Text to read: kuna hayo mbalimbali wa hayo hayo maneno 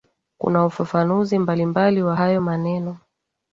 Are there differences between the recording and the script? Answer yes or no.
yes